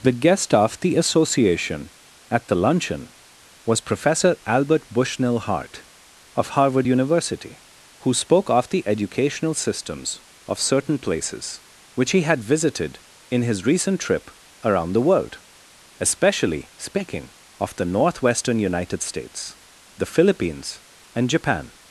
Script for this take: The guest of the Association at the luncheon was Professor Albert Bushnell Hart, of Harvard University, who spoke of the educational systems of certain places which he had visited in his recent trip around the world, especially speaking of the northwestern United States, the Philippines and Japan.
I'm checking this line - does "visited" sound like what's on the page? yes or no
yes